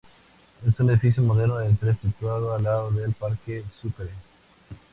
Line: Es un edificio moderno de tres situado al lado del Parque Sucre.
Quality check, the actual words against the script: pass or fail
pass